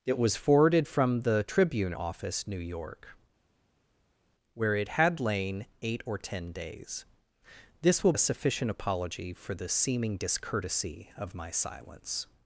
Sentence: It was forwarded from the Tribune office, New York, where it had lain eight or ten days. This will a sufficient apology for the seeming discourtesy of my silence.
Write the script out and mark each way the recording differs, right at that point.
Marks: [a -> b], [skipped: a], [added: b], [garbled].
It was forwarded from the Tribune office, New York, where it had lain eight or ten days. This will a sufficient apology for the seeming discourtesy of my silence.